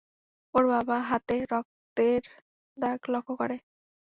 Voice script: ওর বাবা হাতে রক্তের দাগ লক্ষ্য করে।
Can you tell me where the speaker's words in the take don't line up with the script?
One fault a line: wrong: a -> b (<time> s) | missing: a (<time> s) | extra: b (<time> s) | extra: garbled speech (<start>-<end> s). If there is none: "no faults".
no faults